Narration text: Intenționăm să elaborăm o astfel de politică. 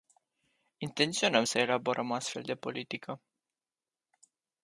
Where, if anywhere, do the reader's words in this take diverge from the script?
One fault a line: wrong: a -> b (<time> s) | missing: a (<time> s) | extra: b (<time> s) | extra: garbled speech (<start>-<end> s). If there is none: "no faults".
no faults